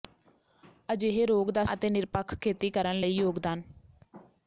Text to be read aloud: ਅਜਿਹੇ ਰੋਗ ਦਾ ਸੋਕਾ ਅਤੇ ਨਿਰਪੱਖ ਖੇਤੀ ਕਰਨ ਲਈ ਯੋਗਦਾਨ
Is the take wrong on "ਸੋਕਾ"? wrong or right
wrong